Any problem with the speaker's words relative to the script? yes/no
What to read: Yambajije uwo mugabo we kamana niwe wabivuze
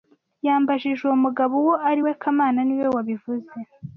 yes